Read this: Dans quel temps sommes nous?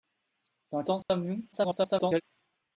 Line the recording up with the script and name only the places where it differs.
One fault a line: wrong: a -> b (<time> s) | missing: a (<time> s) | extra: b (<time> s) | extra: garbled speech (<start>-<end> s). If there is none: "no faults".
missing: quel (0.8 s)
extra: garbled speech (1.5-2.2 s)